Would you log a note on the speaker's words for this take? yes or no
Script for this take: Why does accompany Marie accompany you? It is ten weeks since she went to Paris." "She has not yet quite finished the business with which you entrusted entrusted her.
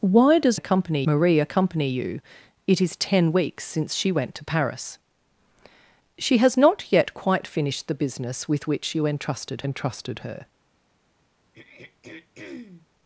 no